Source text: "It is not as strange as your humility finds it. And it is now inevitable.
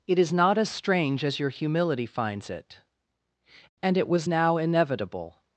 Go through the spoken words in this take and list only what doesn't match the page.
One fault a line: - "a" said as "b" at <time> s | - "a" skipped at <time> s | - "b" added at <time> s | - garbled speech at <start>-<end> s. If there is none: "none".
- "is" said as "was" at 4.1 s